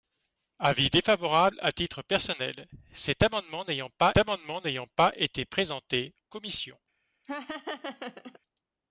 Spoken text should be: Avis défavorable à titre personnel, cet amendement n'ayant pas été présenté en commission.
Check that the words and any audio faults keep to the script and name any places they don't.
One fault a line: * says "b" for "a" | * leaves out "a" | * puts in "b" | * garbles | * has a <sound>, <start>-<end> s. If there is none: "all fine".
* puts in "amendement n'ayant pas"
* leaves out "en"
* has a laugh, 7.2-8.4 s